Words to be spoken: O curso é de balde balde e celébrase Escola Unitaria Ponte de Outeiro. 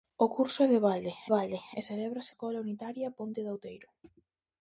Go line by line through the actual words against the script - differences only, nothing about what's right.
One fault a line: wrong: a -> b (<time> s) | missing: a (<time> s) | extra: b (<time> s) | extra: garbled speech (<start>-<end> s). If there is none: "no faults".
no faults